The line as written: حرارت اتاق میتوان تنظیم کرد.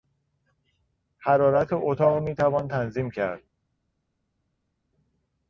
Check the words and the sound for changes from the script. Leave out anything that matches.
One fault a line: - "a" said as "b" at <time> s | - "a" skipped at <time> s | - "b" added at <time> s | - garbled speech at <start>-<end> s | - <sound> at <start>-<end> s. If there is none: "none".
none